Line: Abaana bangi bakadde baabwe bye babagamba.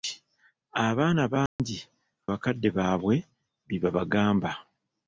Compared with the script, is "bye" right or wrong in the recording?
right